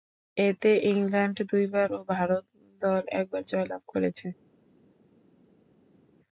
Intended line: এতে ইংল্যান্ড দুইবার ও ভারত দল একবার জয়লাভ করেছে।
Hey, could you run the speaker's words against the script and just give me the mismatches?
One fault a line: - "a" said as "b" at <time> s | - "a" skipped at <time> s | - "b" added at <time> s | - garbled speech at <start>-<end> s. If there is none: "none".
none